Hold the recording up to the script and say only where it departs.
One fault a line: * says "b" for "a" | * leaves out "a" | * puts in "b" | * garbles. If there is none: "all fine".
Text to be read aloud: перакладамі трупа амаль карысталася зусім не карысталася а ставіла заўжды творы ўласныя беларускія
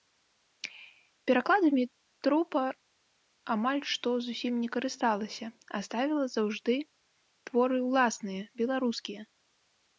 * says "што" for "карысталася"